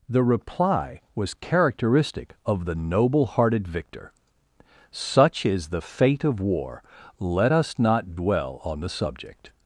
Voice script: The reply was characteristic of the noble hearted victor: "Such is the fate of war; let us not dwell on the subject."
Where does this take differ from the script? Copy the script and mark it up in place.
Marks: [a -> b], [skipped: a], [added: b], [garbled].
The reply was characteristic of the noble hearted victor: "Such is the fate of war; let us not dwell on the subject."